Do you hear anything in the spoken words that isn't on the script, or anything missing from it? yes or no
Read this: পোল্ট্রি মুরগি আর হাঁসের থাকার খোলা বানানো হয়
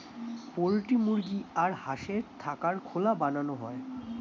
no